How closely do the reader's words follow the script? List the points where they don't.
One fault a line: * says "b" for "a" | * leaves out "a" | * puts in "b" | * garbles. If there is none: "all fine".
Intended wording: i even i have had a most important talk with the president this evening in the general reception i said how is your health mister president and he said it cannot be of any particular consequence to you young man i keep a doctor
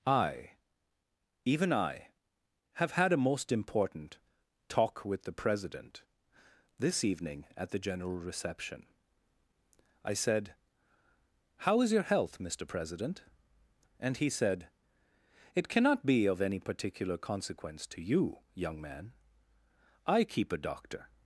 * says "at" for "in"